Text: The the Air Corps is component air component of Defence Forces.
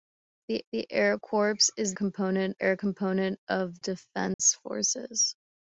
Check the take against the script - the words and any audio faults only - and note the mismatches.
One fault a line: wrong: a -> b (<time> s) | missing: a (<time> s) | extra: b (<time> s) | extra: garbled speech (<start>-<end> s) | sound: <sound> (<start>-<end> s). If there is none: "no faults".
sound: dropout (4.3-4.4 s)